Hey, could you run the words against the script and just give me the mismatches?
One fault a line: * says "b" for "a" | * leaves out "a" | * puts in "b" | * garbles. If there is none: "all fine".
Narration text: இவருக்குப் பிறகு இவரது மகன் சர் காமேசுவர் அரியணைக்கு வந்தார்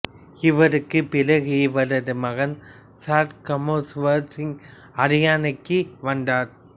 * puts in "சிங்"